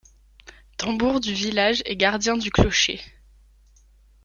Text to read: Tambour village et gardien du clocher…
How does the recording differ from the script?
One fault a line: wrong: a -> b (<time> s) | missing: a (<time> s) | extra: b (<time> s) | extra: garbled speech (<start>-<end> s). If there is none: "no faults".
extra: du (1.2 s)